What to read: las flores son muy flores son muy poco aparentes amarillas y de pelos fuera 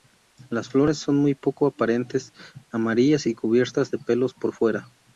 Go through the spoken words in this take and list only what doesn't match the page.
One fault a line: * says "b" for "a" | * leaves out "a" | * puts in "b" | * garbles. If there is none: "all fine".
* leaves out "flores son muy"
* puts in "cubiertas"
* puts in "por"